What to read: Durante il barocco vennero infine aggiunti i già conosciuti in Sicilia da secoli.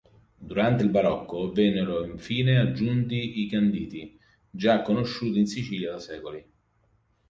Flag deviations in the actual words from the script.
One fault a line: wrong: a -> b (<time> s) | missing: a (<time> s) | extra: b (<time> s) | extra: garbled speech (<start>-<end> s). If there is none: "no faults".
extra: canditi (3.5 s)